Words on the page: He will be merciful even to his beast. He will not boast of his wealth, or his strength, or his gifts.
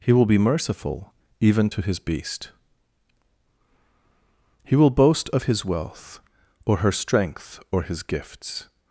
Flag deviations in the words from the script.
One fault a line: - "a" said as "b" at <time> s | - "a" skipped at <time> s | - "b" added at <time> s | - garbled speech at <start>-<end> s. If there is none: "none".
- "not" skipped at 4.9 s
- "his" said as "her" at 6.8 s